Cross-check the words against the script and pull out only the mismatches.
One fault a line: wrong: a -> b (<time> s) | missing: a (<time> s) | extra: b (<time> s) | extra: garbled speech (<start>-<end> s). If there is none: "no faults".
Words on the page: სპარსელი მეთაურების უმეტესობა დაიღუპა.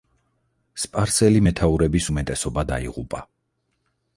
no faults